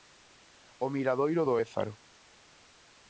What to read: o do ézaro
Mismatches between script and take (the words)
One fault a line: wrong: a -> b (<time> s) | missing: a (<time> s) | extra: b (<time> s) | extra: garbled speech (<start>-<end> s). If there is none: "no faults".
extra: miradoiro (0.9 s)